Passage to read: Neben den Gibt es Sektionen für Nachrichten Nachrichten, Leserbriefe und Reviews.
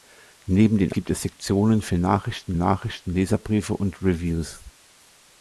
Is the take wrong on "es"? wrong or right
right